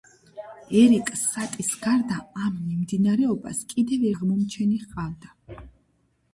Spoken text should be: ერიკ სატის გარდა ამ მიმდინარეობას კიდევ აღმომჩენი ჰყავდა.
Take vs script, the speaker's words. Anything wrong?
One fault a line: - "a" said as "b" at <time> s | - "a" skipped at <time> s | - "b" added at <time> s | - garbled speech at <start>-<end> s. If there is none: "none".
none